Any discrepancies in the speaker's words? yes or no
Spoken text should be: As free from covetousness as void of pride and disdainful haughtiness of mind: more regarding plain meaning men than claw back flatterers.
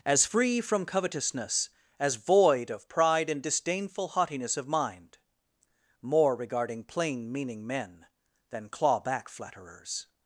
no